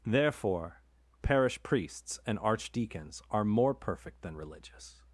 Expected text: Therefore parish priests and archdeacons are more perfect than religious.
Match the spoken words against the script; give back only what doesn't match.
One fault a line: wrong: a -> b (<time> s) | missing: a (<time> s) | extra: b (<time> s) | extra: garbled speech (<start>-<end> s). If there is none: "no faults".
no faults